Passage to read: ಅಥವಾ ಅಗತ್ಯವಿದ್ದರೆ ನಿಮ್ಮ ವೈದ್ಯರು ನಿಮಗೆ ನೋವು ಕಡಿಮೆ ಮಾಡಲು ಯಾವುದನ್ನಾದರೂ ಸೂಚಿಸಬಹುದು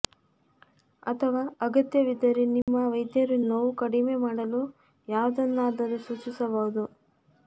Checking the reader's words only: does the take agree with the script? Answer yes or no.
no